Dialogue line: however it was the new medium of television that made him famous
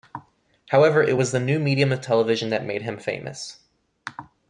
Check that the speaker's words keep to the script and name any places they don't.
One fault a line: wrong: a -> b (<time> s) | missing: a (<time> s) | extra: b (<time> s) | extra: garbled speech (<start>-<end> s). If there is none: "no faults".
no faults